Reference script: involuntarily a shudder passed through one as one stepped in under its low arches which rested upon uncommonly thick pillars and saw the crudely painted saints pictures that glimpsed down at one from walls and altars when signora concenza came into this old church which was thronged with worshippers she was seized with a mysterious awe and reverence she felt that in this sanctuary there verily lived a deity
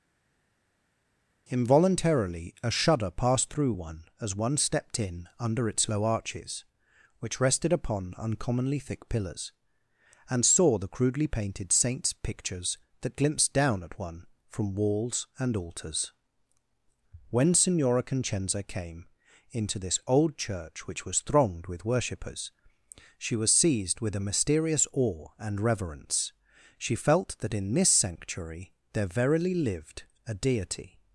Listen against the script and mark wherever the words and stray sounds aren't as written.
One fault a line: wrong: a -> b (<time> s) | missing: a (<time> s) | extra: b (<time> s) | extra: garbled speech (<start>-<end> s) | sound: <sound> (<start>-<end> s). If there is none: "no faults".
no faults